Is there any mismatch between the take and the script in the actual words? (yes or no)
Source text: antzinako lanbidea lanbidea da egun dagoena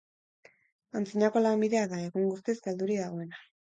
yes